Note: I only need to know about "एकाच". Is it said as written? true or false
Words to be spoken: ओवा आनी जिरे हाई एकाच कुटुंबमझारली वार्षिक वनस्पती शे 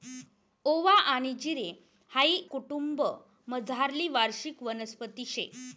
false